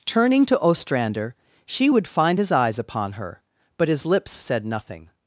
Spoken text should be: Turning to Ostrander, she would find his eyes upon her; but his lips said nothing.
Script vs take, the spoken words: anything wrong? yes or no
no